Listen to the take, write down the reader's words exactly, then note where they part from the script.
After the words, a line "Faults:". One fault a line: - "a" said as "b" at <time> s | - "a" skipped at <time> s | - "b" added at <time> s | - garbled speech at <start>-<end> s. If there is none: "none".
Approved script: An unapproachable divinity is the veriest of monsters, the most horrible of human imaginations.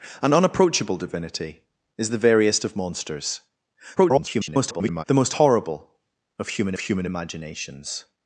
An unapproachable divinity is the veriest of monsters, [garbled] the most horrible of human human imaginations.
Faults:
- garbled speech at 4.0-5.0 s
- "human" added at 6.8 s